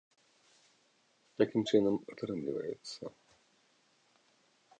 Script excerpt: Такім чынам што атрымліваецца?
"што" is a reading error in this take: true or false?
true